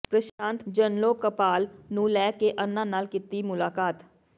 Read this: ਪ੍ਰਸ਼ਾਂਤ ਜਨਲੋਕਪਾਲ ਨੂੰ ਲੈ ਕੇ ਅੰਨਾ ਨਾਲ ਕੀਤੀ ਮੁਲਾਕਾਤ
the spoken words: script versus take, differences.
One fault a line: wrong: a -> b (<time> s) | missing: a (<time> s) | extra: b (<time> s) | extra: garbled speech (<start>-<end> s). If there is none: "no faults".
no faults